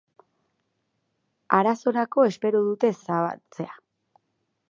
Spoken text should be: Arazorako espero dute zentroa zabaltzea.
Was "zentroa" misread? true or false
true